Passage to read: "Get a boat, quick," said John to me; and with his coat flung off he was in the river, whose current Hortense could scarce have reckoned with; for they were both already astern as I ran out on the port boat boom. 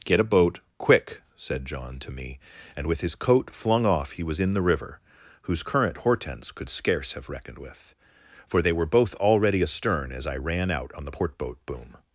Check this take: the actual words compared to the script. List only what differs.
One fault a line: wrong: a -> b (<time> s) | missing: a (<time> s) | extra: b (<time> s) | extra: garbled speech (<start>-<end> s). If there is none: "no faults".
no faults